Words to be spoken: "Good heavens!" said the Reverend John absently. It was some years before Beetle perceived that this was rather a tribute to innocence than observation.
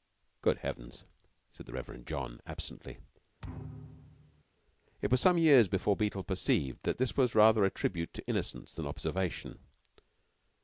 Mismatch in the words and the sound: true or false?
true